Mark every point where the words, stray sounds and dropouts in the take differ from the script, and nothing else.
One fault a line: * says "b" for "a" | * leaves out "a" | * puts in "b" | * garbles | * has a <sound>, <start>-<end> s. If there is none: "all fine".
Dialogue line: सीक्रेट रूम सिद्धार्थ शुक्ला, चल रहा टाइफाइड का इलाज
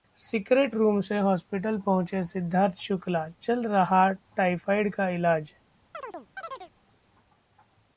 * puts in "से हॉस्पिटल पहुंचे"
* has a chirp, 5.9-6.7 s